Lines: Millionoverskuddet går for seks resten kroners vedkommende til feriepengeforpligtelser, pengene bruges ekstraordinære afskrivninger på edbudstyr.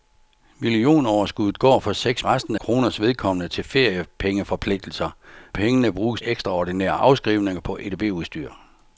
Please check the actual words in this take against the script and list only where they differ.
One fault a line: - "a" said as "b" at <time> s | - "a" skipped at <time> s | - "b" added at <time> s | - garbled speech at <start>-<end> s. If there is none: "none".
none